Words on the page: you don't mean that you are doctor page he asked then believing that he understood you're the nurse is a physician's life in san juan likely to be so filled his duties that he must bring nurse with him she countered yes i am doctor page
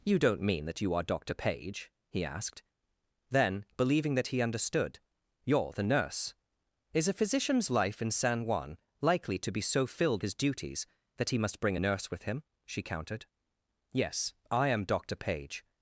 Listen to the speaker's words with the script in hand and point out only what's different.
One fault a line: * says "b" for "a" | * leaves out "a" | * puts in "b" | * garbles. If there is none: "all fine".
all fine